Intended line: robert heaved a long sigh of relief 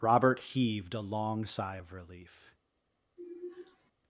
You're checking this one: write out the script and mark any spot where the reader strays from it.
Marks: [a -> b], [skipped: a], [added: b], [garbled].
robert heaved a long sigh of relief